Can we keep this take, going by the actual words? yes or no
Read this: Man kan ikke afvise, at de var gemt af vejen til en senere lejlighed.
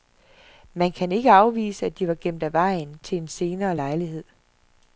yes